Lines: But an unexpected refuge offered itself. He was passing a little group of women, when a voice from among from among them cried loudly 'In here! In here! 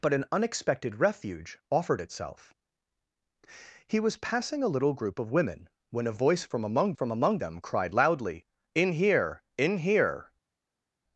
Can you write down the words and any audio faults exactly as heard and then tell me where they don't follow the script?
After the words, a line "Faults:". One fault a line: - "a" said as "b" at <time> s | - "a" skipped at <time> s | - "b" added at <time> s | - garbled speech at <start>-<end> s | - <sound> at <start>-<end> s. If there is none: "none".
But an unexpected refuge offered itself. He was passing a little group of women, when a voice from among from among them cried loudly 'In here! In here!
Faults:
none